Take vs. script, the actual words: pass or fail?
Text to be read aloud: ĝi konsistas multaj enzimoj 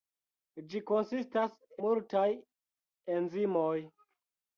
pass